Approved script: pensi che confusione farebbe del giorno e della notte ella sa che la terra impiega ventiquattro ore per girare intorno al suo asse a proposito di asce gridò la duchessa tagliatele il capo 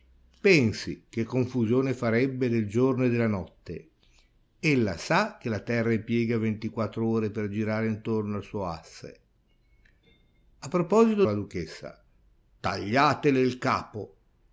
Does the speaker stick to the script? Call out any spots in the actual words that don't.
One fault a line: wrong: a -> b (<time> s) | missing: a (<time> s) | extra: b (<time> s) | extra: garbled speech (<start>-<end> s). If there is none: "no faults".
missing: di asce gridò (11.2 s)